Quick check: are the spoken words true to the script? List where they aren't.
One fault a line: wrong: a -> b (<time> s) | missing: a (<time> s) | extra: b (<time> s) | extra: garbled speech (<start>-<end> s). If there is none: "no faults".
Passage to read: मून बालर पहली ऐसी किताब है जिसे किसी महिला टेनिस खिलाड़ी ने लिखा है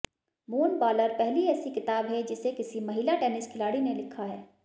no faults